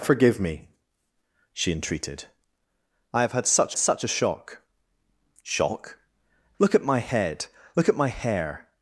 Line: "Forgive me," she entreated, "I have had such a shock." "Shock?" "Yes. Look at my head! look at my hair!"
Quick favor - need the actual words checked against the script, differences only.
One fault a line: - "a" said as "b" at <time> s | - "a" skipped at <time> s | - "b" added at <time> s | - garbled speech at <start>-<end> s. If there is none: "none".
- "such" added at 3.8 s
- "Yes" skipped at 6.0 s